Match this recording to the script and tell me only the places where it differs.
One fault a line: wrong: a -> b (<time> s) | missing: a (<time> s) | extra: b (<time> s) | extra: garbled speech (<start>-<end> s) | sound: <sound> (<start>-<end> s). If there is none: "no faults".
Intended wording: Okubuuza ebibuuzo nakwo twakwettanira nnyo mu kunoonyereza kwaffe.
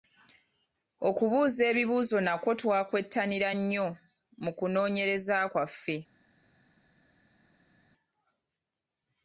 no faults